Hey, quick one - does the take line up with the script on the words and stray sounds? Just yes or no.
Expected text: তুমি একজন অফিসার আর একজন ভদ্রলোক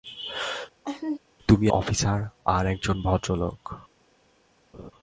no